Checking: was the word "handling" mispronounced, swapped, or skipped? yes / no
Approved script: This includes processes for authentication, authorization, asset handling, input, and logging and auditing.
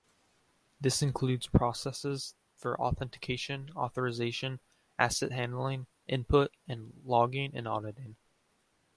no